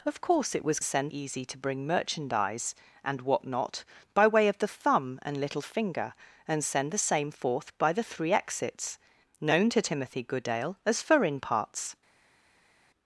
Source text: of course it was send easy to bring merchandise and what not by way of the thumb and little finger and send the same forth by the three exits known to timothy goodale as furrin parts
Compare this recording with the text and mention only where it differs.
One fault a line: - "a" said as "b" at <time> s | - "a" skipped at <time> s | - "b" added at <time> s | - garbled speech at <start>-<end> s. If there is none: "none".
none